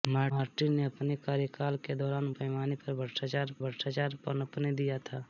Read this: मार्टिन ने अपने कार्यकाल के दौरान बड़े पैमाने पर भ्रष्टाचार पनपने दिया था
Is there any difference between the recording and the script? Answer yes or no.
yes